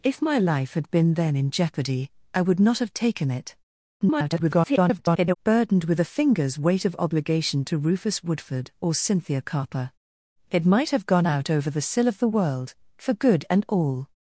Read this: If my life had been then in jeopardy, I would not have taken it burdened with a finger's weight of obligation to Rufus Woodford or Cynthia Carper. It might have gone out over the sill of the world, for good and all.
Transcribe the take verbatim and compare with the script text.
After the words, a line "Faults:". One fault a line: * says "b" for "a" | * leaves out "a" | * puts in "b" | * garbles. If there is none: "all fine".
If my life had been then in jeopardy, I would not have taken it [garbled] burdened with a finger's weight of obligation to Rufus Woodford or Cynthia Carper. It might have gone out over the sill of the world, for good and all.
Faults:
* garbles